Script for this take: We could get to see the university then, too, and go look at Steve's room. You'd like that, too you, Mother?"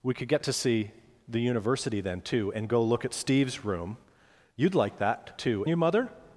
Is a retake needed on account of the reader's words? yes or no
no